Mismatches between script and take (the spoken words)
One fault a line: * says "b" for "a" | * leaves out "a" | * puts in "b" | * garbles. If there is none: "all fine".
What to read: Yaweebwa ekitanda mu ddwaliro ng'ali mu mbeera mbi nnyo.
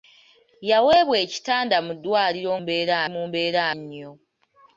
* says "mbeera" for "ng'ali"
* leaves out "mbi"